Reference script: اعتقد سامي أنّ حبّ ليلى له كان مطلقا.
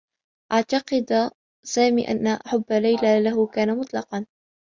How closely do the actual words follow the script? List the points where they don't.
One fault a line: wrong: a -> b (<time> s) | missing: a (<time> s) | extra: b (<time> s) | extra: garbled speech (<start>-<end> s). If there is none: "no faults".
no faults